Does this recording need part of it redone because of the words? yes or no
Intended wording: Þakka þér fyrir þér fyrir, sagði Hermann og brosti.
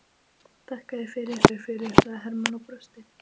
no